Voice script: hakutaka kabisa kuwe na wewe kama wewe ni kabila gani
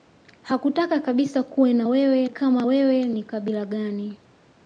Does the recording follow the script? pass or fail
pass